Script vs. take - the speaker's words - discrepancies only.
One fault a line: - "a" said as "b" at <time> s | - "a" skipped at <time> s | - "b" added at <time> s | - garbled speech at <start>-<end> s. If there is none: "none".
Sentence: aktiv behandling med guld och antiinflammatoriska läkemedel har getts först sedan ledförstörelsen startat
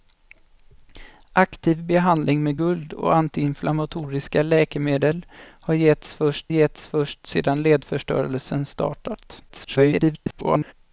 - "getts först" added at 6.5 s
- garbled speech at 9.5-10.7 s